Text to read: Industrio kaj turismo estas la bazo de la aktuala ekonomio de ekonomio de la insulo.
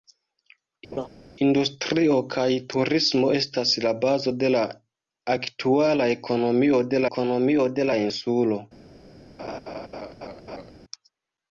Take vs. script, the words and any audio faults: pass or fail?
fail